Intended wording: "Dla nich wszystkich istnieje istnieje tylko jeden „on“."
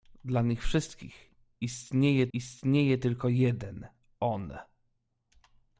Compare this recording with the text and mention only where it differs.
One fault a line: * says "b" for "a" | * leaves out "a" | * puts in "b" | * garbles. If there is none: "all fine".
all fine